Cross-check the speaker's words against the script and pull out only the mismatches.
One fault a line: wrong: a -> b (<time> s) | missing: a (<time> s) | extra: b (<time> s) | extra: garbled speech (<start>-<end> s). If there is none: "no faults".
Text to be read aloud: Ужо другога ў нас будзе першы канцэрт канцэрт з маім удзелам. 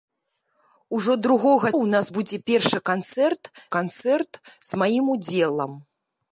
no faults